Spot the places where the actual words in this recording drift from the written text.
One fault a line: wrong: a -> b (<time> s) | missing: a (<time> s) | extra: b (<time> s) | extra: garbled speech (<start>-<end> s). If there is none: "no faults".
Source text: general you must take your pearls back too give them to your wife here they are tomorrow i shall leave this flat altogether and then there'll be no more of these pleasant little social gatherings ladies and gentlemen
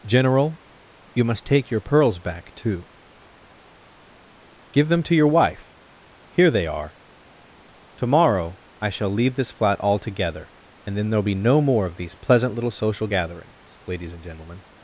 no faults